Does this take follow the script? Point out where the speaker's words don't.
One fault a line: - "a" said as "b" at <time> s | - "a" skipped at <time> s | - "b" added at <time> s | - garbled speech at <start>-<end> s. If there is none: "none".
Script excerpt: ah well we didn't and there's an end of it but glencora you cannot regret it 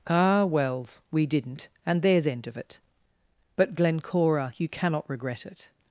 - "well" said as "wells" at 0.5 s
- "an" skipped at 2.3 s